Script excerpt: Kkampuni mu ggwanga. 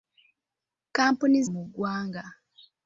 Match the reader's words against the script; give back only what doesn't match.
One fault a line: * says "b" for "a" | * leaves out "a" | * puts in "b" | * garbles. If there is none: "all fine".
all fine